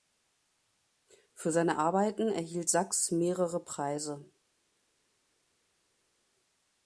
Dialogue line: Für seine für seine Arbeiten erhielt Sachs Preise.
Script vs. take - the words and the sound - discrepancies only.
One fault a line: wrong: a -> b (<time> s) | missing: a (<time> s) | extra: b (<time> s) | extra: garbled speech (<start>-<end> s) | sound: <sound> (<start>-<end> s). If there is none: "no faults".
missing: für seine (1.8 s)
extra: mehrere (3.1 s)